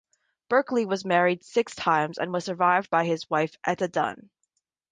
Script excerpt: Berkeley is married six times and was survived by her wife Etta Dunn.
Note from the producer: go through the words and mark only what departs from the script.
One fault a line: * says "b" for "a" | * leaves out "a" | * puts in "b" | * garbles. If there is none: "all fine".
* says "was" for "is"
* says "his" for "her"